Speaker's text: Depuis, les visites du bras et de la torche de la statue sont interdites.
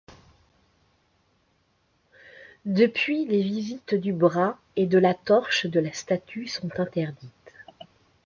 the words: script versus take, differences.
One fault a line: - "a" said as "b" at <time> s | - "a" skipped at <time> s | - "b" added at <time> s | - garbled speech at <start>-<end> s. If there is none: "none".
none